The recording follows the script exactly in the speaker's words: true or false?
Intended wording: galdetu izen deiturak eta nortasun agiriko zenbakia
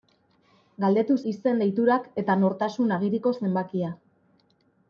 true